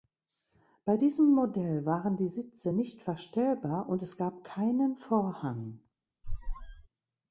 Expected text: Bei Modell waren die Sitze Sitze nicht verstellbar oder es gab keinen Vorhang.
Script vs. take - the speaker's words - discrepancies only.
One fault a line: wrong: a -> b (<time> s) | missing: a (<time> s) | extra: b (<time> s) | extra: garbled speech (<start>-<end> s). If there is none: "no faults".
extra: diesem (0.9 s)
missing: Sitze (2.7 s)
wrong: oder -> und (3.9 s)